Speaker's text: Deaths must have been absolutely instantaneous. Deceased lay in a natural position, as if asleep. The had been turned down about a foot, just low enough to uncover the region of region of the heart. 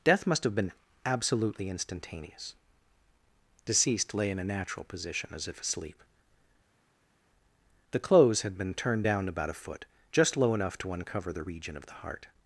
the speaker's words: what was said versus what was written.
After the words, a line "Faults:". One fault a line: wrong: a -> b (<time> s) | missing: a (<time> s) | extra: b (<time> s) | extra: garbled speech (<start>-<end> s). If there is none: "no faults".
Death must have been absolutely instantaneous. Deceased lay in a natural position, as if asleep. The clothes had been turned down about a foot, just low enough to uncover the region of the heart.
Faults:
wrong: Deaths -> Death (0.0 s)
extra: clothes (8.0 s)
missing: region of (11.9 s)